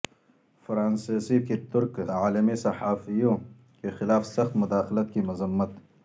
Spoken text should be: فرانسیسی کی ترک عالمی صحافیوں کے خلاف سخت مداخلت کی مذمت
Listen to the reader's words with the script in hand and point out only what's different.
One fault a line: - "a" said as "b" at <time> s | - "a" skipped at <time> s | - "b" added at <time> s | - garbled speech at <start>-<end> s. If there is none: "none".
none